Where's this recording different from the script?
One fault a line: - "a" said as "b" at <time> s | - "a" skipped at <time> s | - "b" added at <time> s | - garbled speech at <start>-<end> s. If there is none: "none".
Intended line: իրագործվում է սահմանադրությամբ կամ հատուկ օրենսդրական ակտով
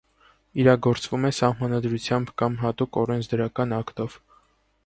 none